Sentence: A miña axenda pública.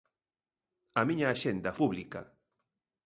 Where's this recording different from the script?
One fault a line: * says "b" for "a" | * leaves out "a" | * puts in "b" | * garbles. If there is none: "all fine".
all fine